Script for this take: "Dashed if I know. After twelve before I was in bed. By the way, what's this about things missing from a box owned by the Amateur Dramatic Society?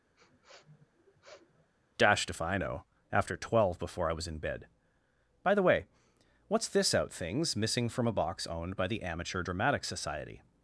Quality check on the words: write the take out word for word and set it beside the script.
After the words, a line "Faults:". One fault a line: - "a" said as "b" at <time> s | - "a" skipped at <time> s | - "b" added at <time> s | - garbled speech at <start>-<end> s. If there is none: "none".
"Dashed if I know. After twelve before I was in bed. By the way, what's this out things missing from a box owned by the Amateur Dramatic Society?
Faults:
- "about" said as "out" at 6.9 s